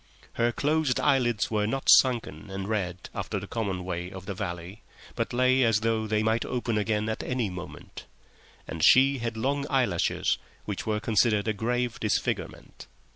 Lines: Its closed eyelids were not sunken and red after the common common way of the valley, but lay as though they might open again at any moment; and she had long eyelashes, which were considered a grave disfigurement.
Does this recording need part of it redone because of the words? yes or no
yes